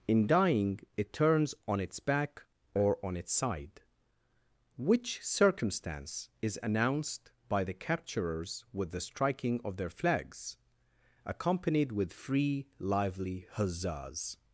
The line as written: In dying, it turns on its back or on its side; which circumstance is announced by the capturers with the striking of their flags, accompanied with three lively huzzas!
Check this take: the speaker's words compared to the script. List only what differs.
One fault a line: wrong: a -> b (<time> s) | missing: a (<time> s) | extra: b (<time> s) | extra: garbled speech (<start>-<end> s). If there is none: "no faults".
wrong: three -> free (12.1 s)